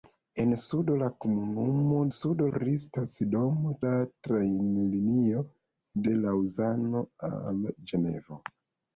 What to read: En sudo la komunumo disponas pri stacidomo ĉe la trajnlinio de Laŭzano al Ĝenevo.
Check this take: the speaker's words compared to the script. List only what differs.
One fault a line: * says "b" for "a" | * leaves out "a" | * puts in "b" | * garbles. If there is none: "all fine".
* says "sudo" for "disponas"
* leaves out "ĉe"